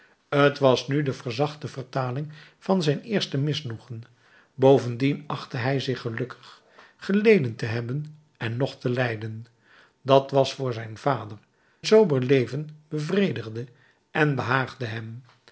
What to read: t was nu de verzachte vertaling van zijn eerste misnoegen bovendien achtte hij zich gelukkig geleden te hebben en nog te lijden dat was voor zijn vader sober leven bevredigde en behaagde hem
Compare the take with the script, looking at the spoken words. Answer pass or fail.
pass